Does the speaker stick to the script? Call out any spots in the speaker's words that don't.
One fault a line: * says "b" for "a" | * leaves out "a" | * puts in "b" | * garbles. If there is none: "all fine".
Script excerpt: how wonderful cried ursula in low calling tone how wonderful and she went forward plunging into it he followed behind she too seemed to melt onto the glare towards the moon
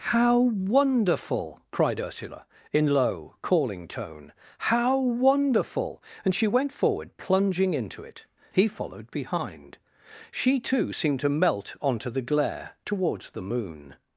all fine